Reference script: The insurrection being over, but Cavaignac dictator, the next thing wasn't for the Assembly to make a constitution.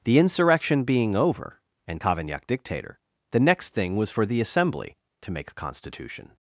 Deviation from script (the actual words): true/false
true